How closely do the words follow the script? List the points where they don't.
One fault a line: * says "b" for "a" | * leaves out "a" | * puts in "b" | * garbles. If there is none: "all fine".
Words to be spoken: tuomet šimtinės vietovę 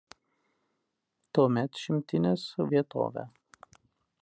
all fine